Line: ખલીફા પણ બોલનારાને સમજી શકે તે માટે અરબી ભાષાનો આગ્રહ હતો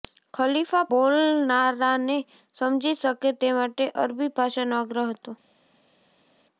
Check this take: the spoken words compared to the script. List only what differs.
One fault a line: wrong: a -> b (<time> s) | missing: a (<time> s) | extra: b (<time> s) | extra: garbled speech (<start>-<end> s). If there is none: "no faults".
missing: પણ (0.9 s)